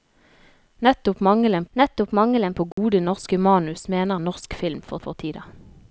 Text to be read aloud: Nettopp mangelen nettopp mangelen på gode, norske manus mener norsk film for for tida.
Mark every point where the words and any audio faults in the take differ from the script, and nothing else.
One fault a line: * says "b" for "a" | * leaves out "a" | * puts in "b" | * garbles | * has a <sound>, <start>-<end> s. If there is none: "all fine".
* has a dropout, 2.7-2.8 s